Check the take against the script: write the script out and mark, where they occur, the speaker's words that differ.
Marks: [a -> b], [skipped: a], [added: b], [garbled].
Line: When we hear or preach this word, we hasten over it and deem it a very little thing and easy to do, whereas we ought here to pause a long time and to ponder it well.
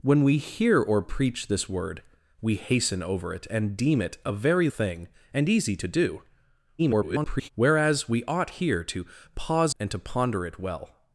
When we hear or preach this word, we hasten over it and deem it a very [skipped: little] thing and easy to do, [garbled] whereas we ought here to pause [skipped: a long time] and to ponder it well.